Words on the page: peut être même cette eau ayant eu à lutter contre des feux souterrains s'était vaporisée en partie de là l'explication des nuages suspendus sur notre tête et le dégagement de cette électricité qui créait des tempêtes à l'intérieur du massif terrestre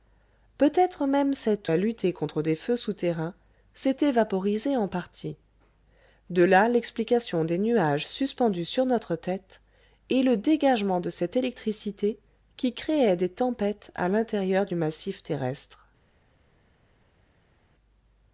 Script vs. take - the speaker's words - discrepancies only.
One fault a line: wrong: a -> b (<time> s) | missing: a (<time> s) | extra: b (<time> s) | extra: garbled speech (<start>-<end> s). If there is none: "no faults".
missing: eau ayant eu (1.7 s)